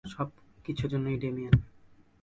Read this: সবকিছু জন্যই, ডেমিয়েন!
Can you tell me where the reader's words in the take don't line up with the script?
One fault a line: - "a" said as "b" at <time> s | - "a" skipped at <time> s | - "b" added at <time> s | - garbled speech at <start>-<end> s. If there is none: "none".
none